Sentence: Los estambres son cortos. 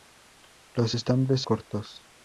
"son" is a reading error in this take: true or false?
true